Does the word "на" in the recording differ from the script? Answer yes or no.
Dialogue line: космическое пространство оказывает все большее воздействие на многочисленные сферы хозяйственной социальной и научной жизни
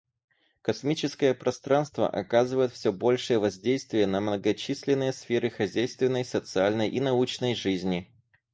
no